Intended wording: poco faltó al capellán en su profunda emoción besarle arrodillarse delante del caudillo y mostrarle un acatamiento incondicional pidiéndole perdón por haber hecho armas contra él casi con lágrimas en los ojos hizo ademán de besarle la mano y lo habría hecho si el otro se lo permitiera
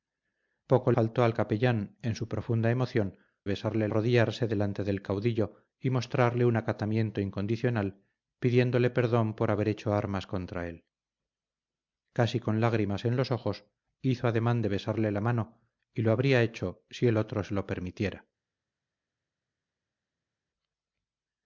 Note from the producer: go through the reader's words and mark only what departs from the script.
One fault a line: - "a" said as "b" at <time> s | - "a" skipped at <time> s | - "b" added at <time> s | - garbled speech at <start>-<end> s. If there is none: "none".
none